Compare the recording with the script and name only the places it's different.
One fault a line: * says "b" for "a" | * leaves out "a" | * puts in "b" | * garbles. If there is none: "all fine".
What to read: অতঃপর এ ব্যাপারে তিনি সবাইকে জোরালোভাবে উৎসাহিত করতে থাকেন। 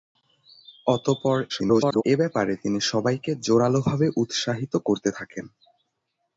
* garbles